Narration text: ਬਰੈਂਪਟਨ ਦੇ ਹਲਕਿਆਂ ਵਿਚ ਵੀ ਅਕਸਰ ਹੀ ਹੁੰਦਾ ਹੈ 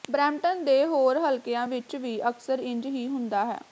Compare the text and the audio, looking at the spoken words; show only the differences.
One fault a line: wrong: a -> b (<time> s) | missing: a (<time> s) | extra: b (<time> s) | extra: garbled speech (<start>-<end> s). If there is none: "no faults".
extra: ਹੋਰ (0.8 s)
extra: ਇੰਜ (2.6 s)